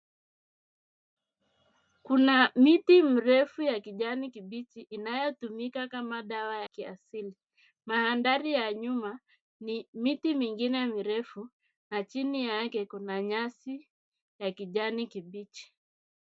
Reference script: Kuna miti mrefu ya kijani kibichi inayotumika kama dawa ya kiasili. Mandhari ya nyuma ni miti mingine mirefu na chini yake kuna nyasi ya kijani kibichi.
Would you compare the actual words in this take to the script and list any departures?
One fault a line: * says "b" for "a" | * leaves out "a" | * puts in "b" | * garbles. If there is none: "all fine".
* leaves out "ya"